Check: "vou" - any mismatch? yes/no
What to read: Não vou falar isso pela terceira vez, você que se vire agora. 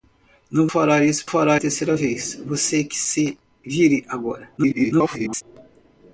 yes